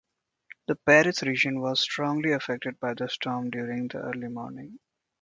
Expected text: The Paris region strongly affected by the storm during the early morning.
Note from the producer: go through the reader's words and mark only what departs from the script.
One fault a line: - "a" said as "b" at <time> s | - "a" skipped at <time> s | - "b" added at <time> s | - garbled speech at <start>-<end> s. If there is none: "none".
- "was" added at 1.6 s